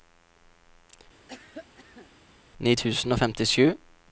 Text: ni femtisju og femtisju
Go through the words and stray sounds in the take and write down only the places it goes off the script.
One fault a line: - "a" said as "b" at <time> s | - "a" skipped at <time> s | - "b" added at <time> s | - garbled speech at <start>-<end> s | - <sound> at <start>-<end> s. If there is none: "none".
- cough at 1.3-2.1 s
- "femtisju" said as "tusen" at 2.7 s